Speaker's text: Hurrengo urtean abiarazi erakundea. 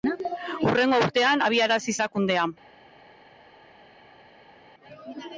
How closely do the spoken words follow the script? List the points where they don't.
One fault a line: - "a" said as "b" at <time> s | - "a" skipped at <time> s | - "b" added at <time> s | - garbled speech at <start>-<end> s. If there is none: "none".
none